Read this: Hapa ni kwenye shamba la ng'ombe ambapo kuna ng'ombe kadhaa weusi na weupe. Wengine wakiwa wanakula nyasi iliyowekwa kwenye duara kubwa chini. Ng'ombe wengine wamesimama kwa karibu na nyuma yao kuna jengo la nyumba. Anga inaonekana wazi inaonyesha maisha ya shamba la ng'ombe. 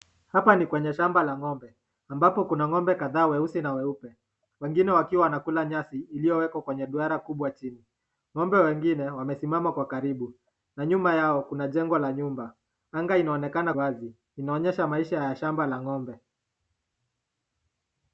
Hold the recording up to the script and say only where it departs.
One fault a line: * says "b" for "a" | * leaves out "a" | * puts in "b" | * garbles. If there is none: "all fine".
all fine